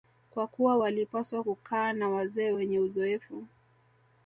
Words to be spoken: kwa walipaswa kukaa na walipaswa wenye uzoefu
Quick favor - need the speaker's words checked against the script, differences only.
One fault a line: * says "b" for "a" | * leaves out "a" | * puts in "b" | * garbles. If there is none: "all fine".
* puts in "kuwa"
* says "wazee" for "walipaswa"